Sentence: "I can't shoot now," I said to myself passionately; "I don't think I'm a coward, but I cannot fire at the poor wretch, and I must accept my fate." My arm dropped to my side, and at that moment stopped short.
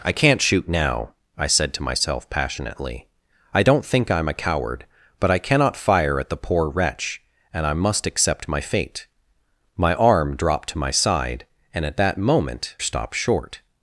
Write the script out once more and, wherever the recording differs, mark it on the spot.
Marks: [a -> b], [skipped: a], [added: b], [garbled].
"I can't shoot now," I said to myself passionately; "I don't think I'm a coward, but I cannot fire at the poor wretch, and I must accept my fate." My arm dropped to my side, and at that moment stopped short.